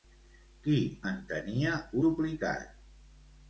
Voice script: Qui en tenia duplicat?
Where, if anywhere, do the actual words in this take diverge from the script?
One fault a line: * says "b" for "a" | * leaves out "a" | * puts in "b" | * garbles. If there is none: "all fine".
all fine